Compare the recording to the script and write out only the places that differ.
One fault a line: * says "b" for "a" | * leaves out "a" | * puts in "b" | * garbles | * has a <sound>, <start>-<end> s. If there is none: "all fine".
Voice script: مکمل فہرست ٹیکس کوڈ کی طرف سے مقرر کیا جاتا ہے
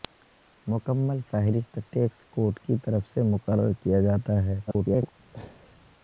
* garbles
* has a laugh, 5.3-5.8 s